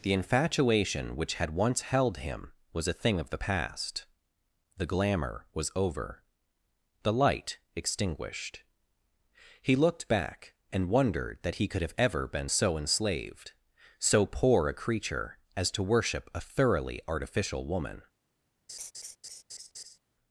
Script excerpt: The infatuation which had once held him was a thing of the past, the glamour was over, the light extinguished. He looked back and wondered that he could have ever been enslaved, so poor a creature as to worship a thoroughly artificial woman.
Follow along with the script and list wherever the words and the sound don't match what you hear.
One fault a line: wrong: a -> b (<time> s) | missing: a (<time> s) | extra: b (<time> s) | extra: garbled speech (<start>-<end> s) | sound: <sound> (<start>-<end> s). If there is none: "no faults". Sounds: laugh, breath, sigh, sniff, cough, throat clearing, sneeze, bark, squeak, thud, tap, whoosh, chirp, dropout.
extra: so (12.4 s)
sound: laugh (18.7-20.0 s)